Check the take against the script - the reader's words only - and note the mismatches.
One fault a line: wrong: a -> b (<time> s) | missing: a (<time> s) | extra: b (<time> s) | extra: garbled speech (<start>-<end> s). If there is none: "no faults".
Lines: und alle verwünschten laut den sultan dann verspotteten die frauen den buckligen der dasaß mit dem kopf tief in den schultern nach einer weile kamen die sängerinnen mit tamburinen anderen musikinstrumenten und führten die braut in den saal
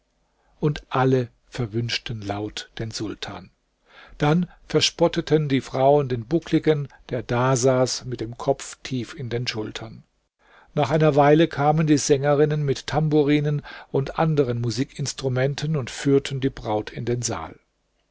extra: und (13.9 s)